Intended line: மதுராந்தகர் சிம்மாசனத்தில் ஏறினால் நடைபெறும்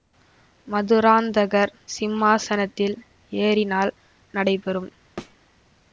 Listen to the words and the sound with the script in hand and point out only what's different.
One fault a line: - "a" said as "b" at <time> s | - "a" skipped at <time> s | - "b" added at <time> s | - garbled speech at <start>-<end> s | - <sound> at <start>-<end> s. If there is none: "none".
- thud at 5.2-5.4 s